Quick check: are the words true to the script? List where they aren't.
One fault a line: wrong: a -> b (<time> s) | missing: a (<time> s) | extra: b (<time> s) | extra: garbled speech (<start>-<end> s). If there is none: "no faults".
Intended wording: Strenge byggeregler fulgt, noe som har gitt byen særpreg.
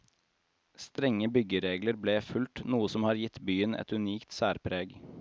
extra: ble (2.0 s)
extra: et unikt (3.7 s)